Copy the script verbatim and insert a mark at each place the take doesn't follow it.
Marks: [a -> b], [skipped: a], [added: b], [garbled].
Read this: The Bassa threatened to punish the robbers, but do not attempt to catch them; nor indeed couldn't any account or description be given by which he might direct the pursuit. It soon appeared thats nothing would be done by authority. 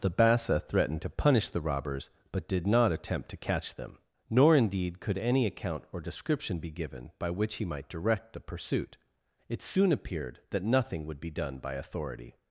The Bassa threatened to punish the robbers, but [do -> did] not attempt to catch them; nor indeed [couldn't -> could] any account or description be given by which he might direct the pursuit. It soon appeared [thats -> that] nothing would be done by authority.